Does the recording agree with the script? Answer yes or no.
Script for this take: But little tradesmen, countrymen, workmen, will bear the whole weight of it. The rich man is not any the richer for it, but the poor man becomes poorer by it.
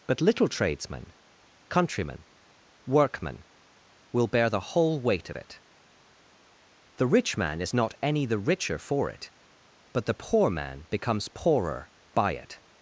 yes